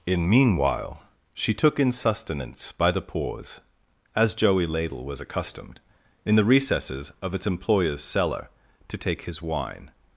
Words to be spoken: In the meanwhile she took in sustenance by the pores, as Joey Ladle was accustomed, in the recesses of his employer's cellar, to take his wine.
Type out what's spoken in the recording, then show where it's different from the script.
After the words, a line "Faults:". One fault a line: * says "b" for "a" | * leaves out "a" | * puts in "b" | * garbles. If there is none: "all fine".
In meanwhile she took in sustenance by the pores, as Joey Ladle was accustomed, in the recesses of its employer's cellar, to take his wine.
Faults:
* leaves out "the"
* says "its" for "his"